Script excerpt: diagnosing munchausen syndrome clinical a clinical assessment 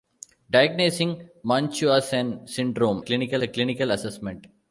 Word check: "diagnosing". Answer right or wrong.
right